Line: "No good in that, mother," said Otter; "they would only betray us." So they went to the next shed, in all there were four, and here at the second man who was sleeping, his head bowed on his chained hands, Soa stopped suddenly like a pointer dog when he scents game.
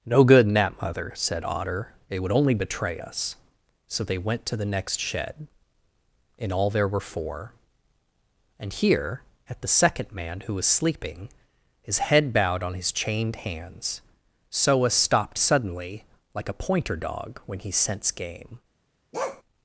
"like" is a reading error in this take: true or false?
false